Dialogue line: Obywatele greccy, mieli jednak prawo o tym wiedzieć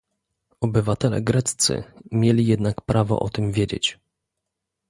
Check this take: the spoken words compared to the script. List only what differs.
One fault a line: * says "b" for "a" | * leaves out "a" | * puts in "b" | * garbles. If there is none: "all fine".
all fine